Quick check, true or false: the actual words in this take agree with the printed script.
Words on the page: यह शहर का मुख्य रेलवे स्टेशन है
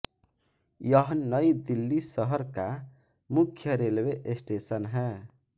false